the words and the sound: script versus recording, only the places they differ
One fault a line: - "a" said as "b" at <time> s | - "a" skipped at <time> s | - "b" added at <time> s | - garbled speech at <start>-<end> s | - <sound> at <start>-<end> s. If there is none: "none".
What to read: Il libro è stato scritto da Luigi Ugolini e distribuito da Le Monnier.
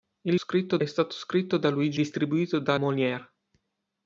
- "libro" said as "scritto" at 0.3 s
- "Ugolini e" skipped at 2.0 s
- "Le" skipped at 2.8 s